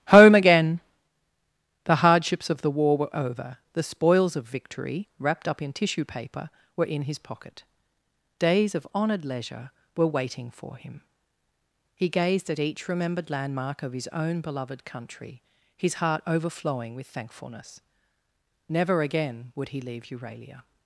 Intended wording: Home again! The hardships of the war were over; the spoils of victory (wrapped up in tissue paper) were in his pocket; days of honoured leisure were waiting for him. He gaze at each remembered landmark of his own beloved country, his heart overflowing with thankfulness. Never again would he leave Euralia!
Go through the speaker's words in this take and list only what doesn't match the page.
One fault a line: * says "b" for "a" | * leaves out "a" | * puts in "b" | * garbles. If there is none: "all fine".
* says "gazed" for "gaze"